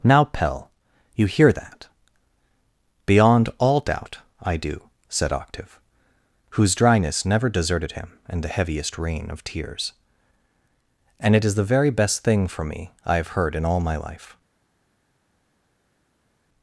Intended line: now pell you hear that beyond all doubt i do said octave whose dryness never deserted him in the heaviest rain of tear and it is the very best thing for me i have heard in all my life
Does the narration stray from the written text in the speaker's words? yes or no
yes